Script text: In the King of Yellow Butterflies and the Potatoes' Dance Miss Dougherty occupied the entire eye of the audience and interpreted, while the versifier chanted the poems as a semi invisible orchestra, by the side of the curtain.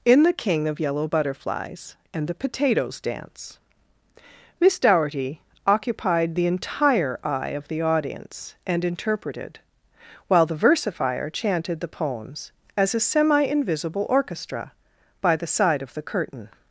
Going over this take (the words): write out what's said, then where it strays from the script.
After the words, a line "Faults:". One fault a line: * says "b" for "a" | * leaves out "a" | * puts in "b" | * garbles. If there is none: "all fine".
In the King of Yellow Butterflies and the Potatoes' Dance Miss Dougherty occupied the entire eye of the audience and interpreted, while the versifier chanted the poems as a semi invisible orchestra, by the side of the curtain.
Faults:
all fine